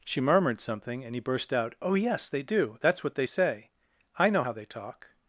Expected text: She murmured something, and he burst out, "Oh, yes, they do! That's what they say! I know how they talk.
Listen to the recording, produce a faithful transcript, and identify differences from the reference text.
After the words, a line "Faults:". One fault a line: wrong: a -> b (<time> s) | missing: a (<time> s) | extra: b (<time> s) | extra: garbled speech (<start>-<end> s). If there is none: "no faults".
She murmured something, and he burst out, "Oh, yes, they do! That's what they say! I know how they talk.
Faults:
no faults